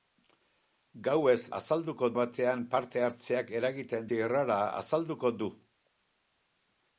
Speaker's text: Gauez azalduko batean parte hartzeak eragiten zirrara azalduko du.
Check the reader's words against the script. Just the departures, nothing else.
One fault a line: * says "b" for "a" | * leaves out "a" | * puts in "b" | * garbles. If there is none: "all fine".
all fine